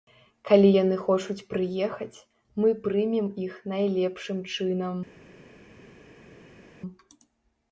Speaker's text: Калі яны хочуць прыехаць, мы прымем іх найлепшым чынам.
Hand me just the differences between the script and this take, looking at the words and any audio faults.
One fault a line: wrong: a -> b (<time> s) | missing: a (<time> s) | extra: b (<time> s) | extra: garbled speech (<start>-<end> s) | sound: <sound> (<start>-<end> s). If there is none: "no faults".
no faults